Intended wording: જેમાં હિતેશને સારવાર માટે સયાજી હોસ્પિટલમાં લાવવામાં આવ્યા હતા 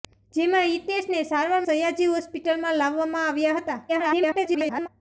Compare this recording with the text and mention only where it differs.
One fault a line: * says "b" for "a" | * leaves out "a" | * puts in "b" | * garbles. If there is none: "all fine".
* leaves out "માટે"
* garbles